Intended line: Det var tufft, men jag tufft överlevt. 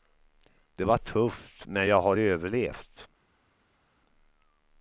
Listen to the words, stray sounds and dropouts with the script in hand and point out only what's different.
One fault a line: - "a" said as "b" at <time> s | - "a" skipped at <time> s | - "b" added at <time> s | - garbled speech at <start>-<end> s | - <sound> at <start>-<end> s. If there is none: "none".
- "tufft" said as "har" at 2.0 s